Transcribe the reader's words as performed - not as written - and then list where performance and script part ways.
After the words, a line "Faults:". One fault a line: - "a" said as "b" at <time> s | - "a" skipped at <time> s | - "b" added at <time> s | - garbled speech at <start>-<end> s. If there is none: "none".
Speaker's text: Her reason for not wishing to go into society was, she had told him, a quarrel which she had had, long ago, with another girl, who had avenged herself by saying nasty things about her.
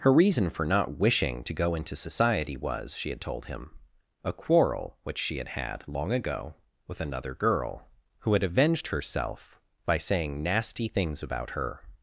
Her reason for not wishing to go into society was, she had told him, a quarrel which she had had, long ago, with another girl, who had avenged herself by saying nasty things about her.
Faults:
none